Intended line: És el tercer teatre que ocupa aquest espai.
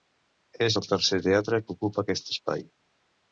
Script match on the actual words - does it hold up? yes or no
yes